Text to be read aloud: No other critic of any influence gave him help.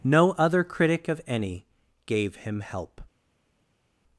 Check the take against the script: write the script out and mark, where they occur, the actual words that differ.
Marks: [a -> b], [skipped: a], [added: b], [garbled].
No other critic of any [skipped: influence] gave him help.